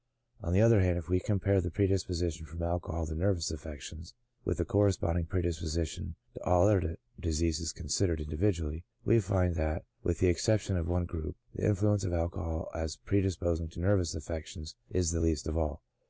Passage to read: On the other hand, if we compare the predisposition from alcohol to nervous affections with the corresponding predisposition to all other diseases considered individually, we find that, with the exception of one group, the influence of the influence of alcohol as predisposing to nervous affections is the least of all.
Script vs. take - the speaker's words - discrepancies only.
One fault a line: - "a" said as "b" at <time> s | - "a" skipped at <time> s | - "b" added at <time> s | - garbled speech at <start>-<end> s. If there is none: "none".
- "the influence of" skipped at 12.1 s